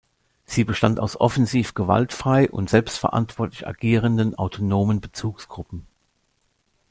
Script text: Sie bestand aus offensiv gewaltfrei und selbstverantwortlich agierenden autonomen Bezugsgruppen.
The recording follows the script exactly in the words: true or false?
true